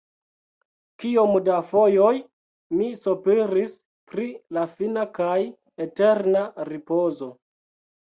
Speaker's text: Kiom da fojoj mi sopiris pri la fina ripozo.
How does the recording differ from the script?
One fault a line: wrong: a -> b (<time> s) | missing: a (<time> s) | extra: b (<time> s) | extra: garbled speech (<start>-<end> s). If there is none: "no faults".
extra: kaj eterna (5.2 s)